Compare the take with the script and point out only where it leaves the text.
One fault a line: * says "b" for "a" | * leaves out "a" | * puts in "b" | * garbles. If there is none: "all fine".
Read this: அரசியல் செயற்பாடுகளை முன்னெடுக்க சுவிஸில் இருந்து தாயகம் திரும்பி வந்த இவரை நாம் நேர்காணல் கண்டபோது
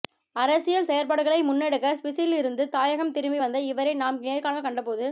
all fine